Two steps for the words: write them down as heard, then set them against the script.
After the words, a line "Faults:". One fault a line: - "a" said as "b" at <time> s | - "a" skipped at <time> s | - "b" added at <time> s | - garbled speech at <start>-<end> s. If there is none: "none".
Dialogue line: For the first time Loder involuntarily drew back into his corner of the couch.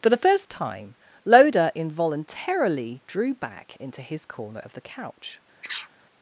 For the first time Loder involuntarily drew back into his corner of the couch.
Faults:
none